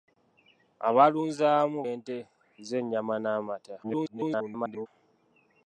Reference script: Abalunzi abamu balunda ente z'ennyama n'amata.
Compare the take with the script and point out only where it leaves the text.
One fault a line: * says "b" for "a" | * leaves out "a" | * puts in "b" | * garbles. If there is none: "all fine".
* leaves out "balunda"
* garbles